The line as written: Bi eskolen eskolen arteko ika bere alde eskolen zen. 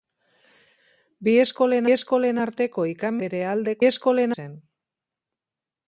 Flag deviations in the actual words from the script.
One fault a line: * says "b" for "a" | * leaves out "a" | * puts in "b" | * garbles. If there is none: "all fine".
all fine